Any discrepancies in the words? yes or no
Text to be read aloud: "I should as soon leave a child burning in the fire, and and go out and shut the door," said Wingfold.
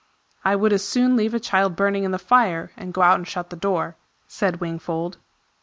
yes